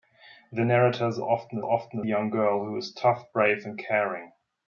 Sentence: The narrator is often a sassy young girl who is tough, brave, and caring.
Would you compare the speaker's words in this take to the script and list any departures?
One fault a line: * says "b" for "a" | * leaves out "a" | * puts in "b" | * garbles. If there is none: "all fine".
* says "often" for "sassy"